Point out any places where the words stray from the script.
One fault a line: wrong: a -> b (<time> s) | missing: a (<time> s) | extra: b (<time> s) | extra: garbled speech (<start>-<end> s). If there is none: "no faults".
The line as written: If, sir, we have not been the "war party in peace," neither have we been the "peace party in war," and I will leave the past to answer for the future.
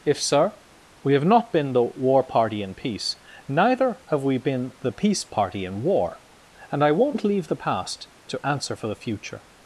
wrong: will -> won't (6.9 s)